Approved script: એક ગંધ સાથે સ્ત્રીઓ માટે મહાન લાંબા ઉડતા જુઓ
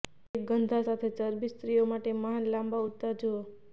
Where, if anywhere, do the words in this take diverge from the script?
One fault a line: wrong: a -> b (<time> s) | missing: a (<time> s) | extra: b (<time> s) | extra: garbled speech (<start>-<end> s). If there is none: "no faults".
extra: ચરબી (1.2 s)